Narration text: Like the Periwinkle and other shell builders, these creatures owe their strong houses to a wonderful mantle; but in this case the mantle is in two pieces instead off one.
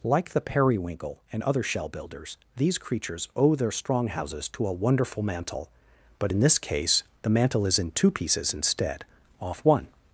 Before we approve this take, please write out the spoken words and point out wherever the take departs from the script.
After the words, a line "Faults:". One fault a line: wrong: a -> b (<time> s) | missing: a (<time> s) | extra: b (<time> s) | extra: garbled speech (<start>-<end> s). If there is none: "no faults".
Like the Periwinkle and other shell builders, these creatures owe their strong houses to a wonderful mantle; but in this case the mantle is in two pieces instead off one.
Faults:
no faults